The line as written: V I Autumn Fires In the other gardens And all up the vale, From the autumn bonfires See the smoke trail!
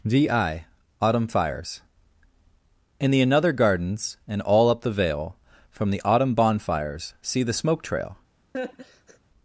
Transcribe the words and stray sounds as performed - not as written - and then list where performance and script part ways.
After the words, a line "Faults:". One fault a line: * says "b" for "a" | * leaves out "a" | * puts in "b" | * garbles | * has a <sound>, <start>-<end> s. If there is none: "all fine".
V I Autumn Fires In the another gardens And all up the vale, From the autumn bonfires See the smoke trail!
Faults:
* says "another" for "other"
* has a laugh, 8.5-9.2 s